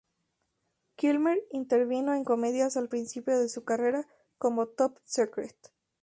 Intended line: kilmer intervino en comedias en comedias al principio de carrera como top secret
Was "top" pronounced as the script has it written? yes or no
yes